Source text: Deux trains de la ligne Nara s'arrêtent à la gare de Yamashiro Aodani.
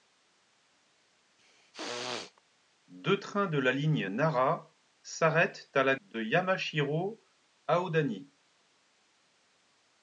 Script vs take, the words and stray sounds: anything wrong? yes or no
yes